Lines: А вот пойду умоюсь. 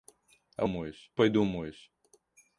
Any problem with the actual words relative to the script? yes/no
yes